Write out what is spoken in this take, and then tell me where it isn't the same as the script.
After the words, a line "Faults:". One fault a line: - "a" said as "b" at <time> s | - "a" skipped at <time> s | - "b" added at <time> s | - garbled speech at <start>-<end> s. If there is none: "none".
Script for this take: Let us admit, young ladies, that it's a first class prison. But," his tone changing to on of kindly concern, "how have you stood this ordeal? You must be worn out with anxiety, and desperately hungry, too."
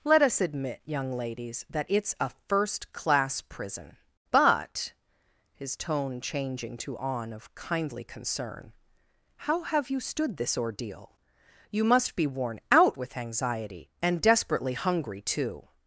Let us admit, young ladies, that it's a first class prison. But," his tone changing to on of kindly concern, "how have you stood this ordeal? You must be worn out with anxiety, and desperately hungry, too."
Faults:
none